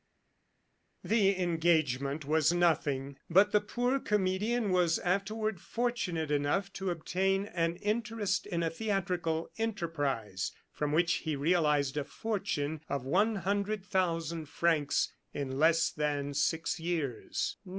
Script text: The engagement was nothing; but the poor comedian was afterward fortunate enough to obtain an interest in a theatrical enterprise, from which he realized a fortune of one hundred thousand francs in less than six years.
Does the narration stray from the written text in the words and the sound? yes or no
no